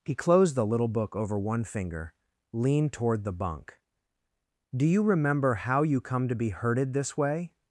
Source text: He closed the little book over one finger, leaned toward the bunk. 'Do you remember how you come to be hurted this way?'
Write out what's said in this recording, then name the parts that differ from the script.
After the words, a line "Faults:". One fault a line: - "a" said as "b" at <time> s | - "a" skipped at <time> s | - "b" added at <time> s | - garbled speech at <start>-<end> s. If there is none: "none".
He closed the little book over one finger, leaned toward the bunk. 'Do you remember how you come to be hurted this way?'
Faults:
none